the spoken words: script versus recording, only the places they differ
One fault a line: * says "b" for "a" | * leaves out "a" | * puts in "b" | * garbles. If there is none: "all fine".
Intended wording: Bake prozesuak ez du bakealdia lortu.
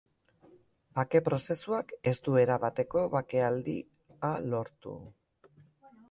* puts in "erabateko"